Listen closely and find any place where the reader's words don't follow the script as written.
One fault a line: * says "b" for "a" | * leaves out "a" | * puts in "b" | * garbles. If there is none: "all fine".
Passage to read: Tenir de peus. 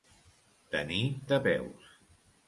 all fine